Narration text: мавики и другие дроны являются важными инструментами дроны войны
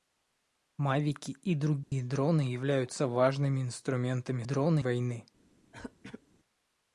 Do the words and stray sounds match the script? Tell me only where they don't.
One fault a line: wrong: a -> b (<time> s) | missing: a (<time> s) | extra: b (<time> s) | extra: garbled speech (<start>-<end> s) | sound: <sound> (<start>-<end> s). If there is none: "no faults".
sound: dropout (1.8-1.9 s)
sound: throat clearing (5.7-6.2 s)